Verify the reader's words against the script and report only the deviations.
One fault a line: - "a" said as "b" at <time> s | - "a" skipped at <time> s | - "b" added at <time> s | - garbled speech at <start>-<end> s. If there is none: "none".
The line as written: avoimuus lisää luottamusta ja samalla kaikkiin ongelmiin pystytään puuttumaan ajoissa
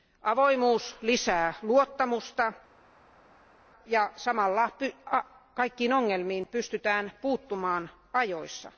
none